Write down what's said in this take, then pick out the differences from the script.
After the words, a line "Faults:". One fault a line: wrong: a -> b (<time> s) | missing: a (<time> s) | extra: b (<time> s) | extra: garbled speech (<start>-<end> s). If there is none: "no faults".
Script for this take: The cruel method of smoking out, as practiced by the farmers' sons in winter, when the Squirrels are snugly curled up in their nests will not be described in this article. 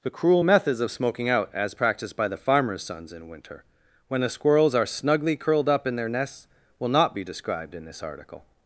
The cruel methods of smoking out, as practiced by the farmers' sons in winter, when the Squirrels are snugly curled up in their nests will not be described in this article.
Faults:
wrong: method -> methods (0.4 s)